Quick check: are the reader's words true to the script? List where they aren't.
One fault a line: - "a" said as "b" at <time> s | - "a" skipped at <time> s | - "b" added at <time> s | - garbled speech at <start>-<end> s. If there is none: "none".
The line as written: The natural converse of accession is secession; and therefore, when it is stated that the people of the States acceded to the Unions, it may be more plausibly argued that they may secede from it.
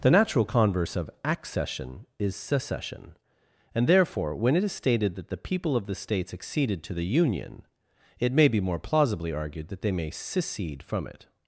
- "Unions" said as "Union" at 7.0 s